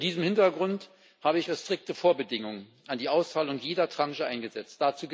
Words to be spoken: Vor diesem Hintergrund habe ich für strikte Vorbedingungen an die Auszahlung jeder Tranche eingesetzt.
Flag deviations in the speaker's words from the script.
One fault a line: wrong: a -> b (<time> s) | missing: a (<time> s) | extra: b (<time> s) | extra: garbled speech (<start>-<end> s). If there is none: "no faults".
no faults